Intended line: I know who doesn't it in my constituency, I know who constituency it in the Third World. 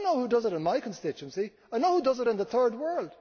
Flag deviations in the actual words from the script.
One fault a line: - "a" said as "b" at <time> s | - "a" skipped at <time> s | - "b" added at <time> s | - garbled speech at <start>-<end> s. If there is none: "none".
- "doesn't" said as "does" at 0.3 s
- "constituency" said as "does" at 2.0 s